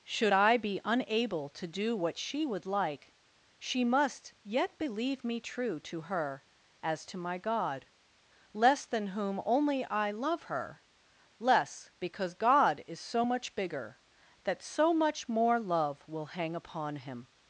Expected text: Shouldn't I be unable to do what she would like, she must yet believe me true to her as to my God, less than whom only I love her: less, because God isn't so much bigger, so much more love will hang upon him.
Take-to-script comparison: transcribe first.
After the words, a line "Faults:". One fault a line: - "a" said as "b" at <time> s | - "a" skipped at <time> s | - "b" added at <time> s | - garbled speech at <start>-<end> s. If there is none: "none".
Should I be unable to do what she would like, she must yet believe me true to her as to my God, less than whom only I love her: less, because God is so much bigger, that so much more love will hang upon him.
Faults:
- "Shouldn't" said as "Should" at 0.0 s
- "isn't" said as "is" at 12.8 s
- "that" added at 14.4 s